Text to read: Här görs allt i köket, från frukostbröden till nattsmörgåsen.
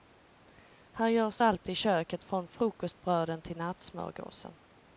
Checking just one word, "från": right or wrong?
right